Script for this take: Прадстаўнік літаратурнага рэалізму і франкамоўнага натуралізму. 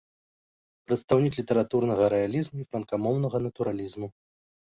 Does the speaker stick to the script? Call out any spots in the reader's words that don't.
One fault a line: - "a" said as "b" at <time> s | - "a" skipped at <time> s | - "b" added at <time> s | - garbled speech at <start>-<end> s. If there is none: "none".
none